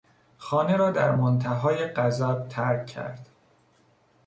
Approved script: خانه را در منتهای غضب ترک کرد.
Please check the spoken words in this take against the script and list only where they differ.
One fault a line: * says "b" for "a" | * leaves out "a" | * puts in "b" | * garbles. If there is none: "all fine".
all fine